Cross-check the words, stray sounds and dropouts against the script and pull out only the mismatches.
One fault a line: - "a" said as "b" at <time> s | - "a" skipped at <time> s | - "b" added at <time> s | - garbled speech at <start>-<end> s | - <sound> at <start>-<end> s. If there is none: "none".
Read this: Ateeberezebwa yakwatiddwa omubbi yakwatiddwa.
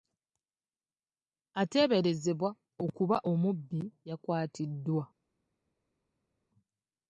- "yakwatiddwa" said as "okuba" at 2.9 s